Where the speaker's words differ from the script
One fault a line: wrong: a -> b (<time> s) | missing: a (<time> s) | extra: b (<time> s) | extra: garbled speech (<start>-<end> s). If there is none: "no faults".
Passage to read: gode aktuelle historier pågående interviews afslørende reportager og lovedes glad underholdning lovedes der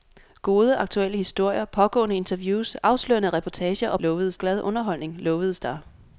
no faults